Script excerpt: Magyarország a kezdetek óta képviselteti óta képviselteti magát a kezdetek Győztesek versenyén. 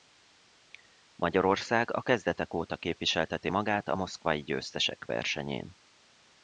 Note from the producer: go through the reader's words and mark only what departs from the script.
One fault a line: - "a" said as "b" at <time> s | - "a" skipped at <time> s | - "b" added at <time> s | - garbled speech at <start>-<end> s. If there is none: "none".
- "óta képviselteti" skipped at 3.5 s
- "kezdetek" said as "moszkvai" at 3.9 s